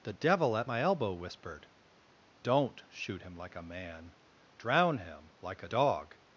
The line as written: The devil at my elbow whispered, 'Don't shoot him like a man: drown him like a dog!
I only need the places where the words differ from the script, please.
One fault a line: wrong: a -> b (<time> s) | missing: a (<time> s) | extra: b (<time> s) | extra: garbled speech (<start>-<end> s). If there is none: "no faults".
no faults